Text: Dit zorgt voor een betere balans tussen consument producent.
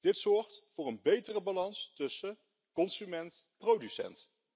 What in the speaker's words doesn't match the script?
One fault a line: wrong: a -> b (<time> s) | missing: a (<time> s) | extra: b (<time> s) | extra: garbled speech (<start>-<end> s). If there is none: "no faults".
no faults